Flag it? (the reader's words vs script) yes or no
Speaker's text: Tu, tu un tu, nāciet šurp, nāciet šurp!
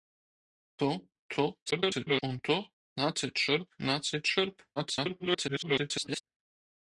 yes